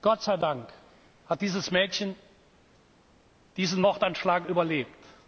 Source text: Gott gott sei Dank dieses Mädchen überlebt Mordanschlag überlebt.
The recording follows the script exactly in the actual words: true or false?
false